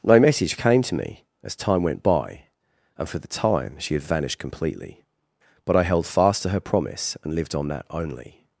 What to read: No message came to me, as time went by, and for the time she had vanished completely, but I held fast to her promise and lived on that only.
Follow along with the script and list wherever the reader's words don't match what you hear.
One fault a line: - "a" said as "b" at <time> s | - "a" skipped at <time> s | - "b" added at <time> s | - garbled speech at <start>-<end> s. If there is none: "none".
none